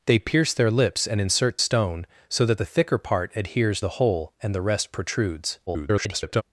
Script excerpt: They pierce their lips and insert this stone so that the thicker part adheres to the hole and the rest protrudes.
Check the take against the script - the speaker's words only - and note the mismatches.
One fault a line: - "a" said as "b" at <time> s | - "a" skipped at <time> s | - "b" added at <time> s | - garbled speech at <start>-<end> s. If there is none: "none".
- "this" skipped at 1.6 s
- "to" skipped at 3.8 s
- garbled speech at 5.7-6.4 s